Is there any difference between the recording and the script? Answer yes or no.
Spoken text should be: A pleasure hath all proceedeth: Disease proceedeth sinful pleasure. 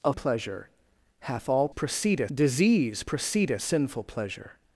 no